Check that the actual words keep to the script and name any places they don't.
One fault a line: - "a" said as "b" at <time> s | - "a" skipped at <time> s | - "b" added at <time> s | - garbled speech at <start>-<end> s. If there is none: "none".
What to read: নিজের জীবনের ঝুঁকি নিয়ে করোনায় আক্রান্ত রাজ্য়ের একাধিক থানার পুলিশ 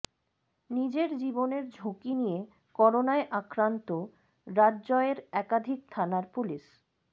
none